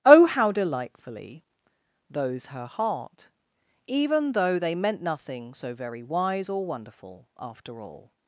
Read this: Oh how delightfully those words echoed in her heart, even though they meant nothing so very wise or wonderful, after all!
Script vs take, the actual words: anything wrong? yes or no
yes